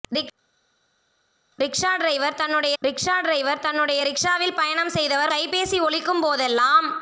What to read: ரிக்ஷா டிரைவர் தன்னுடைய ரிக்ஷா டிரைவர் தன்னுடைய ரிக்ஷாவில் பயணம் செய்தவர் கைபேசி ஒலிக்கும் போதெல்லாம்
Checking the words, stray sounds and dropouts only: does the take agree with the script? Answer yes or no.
yes